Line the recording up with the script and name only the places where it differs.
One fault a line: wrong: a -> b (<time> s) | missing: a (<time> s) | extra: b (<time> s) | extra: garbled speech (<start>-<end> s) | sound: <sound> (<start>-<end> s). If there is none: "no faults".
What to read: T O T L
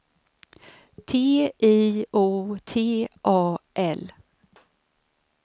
extra: I (1.6 s)
extra: A (3.2 s)